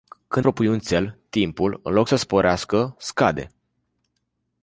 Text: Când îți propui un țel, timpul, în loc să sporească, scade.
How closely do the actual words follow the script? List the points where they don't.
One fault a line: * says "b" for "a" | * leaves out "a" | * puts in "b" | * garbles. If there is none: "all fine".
* leaves out "îți"